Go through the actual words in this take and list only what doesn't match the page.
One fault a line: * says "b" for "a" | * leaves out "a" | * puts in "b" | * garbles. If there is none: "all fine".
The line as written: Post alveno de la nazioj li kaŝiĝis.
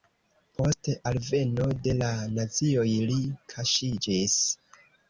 all fine